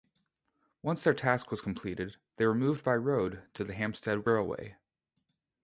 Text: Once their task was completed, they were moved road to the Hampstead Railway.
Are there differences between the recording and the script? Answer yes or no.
yes